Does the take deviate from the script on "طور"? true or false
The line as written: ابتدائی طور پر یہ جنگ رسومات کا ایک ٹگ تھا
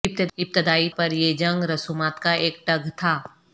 true